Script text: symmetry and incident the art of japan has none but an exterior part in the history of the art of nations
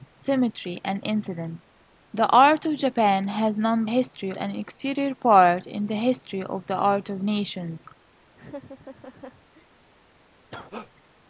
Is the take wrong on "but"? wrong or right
wrong